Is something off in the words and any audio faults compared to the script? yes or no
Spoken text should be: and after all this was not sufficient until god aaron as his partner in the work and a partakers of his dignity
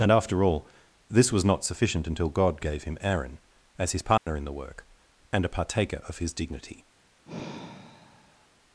yes